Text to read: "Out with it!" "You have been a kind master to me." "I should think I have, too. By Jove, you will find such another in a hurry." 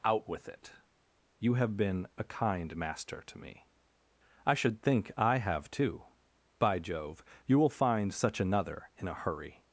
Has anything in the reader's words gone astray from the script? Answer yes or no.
no